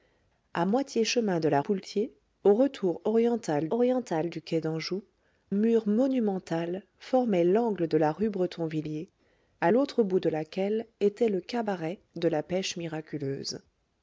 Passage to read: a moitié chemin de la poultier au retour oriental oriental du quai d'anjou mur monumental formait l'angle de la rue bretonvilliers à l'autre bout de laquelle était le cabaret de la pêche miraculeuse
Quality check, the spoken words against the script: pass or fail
pass